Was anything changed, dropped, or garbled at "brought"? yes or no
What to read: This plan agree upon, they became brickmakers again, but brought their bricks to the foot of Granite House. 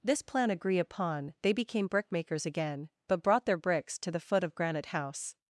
no